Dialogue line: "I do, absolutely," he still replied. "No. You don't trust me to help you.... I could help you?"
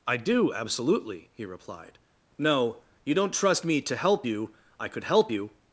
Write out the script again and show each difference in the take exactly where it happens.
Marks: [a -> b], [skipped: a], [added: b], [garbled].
"I do, absolutely," he [skipped: still] replied. "No. You don't trust me to help you.... I could help you?"